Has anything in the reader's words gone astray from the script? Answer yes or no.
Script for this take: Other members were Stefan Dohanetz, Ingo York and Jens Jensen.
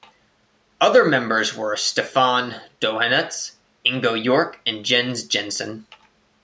no